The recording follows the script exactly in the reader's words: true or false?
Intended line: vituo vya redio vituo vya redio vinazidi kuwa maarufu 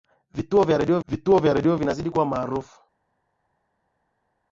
true